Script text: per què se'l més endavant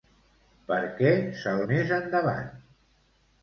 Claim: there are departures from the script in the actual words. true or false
false